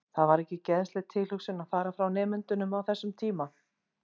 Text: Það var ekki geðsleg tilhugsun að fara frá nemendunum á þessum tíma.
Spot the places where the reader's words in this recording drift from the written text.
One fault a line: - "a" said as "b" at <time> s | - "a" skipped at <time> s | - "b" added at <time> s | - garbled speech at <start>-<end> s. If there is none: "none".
none